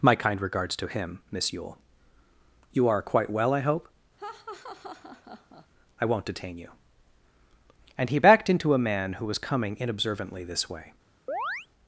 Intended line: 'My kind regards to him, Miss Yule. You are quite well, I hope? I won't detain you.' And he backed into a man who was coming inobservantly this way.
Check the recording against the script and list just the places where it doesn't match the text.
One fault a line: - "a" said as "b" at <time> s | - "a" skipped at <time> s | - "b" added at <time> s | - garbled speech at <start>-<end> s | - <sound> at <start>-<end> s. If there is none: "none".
- laugh at 4.2-5.7 s
- chirp at 11.3-11.7 s